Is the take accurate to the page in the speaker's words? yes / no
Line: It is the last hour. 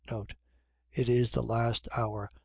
yes